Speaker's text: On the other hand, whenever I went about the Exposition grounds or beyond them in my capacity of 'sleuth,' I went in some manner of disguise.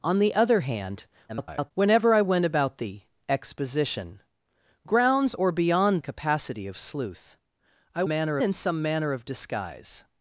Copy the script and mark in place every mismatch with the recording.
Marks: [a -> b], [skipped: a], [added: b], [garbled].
On the other hand, [garbled] whenever I went about the Exposition grounds or beyond [skipped: them in my] capacity of 'sleuth,' I [went -> manner] in some manner of disguise.